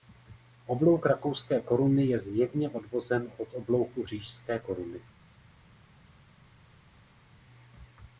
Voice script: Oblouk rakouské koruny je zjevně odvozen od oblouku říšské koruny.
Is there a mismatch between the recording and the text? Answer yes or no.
no